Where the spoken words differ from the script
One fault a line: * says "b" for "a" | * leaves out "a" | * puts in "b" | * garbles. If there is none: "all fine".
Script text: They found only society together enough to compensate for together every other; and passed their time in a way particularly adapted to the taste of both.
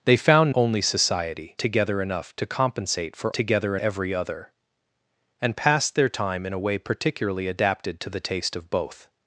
all fine